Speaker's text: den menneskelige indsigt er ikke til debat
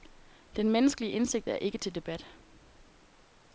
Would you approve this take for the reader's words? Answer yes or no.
yes